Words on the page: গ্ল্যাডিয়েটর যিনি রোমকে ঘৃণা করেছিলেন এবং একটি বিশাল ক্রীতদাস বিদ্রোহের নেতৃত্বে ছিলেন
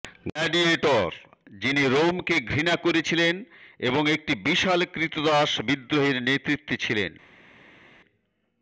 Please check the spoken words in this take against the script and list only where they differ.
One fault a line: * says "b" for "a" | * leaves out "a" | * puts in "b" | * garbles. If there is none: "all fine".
all fine